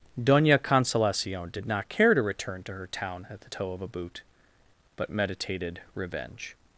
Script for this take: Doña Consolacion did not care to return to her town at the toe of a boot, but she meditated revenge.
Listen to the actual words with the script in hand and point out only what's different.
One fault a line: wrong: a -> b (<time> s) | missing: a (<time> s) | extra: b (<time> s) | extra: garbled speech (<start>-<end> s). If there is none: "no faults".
missing: she (5.1 s)